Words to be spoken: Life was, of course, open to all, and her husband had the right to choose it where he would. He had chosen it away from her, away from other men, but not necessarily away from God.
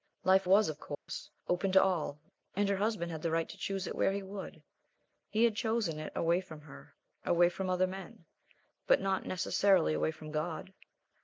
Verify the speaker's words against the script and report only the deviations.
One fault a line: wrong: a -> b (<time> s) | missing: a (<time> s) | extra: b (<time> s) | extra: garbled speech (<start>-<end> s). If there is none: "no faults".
no faults